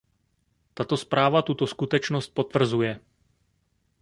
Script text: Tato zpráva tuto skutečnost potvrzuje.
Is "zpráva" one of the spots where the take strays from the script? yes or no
no